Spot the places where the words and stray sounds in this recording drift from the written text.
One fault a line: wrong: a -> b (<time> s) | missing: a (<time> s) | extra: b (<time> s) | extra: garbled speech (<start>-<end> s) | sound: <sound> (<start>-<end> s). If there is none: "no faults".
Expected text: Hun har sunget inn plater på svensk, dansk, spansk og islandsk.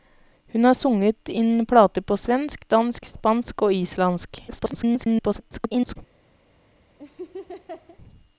extra: garbled speech (4.5-6.0 s)
sound: laugh (7.0-8.0 s)